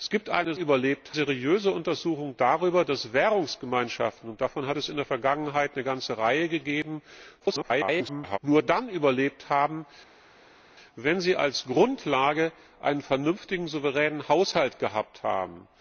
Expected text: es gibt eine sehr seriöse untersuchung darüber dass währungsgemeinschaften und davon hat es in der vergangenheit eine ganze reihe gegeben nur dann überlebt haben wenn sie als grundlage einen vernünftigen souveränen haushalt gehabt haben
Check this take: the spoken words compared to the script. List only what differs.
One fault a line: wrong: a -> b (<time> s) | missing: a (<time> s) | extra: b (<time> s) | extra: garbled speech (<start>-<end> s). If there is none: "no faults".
wrong: sehr -> überlebt (0.5 s)
extra: garbled speech (7.4-8.4 s)